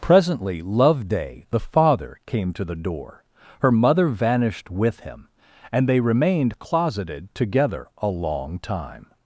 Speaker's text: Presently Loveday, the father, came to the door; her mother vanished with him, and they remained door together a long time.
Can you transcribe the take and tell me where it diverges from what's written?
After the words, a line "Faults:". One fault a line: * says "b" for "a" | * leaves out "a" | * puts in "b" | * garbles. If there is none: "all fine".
Presently Loveday, the father, came to the door; her mother vanished with him, and they remained closeted together a long time.
Faults:
* says "closeted" for "door"